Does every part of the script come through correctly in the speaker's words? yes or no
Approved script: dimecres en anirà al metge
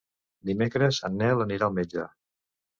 no